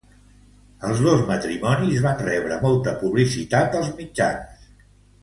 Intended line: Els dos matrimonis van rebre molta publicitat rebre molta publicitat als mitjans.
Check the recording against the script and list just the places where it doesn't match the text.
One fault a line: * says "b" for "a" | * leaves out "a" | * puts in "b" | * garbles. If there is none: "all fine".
* leaves out "rebre molta publicitat"